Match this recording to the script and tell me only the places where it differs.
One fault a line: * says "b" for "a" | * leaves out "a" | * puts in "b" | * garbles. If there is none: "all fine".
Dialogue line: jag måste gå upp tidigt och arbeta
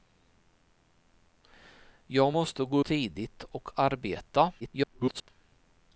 * leaves out "upp"
* garbles